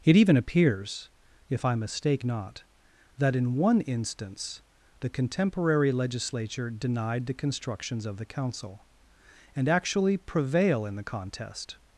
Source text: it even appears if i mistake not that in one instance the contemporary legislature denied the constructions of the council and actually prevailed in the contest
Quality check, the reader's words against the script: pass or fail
fail